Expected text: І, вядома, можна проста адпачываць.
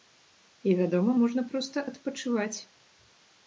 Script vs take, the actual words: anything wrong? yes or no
no